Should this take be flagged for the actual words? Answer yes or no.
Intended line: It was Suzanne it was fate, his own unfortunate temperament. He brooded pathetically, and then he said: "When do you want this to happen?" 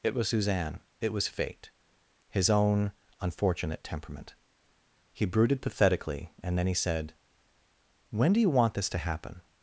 no